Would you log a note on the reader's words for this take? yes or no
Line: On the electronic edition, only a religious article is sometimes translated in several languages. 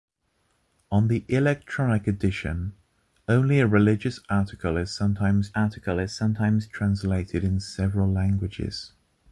yes